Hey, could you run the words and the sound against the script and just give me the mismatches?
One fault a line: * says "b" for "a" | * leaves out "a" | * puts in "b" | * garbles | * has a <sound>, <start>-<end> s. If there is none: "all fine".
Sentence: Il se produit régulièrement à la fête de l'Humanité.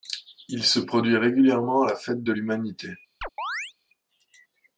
* has a chirp, 3.2-3.7 s